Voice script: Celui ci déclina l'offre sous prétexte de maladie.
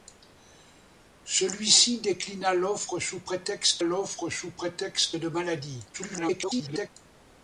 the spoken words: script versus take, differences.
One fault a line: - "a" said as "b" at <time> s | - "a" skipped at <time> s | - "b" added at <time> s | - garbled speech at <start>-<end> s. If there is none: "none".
- "l'offre sous prétexte" added at 3.8 s
- garbled speech at 5.9-6.9 s